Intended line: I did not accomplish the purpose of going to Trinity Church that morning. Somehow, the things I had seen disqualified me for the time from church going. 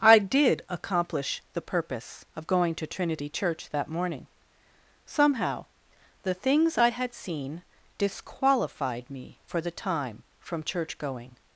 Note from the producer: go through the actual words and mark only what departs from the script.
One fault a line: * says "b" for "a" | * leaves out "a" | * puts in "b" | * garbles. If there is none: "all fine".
* leaves out "not"